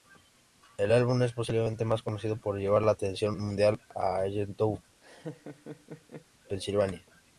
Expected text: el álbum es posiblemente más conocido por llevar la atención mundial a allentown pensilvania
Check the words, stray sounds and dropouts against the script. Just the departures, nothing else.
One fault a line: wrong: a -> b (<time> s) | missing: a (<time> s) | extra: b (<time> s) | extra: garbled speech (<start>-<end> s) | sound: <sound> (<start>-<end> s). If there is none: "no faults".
sound: laugh (5.0-6.3 s)